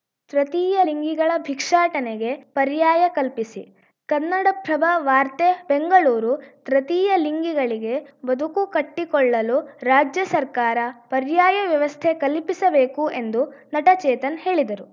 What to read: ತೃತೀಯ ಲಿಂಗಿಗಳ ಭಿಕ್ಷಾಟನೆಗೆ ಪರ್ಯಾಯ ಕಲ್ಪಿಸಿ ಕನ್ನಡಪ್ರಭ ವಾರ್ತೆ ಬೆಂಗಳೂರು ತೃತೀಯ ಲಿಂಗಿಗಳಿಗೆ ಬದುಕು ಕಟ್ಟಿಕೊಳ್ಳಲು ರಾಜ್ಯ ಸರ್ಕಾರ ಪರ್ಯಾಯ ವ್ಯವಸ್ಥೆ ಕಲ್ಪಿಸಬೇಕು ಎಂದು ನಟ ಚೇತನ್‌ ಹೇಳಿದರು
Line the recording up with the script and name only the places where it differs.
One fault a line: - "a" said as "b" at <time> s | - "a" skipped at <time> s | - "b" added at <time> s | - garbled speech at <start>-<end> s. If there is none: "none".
none